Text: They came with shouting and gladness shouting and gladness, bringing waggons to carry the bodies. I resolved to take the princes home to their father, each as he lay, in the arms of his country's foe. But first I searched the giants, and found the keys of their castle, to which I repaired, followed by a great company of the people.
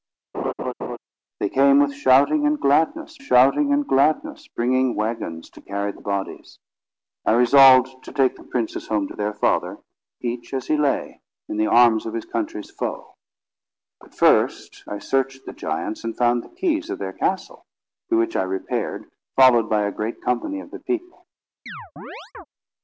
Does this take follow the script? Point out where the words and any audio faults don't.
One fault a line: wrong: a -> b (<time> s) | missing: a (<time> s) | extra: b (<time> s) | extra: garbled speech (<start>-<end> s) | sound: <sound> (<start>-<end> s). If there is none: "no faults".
sound: laugh (0.3-1.0 s)
sound: chirp (21.7-22.5 s)